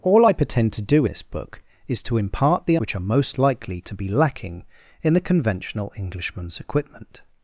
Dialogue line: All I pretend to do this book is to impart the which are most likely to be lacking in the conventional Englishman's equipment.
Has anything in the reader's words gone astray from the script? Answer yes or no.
no